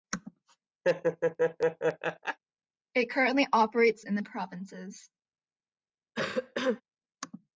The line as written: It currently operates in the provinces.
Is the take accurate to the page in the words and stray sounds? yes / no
no